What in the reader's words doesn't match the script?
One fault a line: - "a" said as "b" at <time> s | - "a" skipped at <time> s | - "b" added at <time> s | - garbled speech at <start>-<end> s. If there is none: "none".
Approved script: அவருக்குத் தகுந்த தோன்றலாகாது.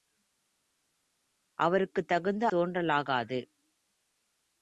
none